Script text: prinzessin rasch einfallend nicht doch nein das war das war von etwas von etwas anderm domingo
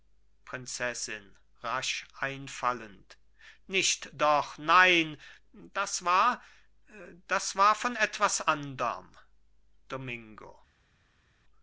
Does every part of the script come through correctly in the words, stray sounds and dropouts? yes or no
no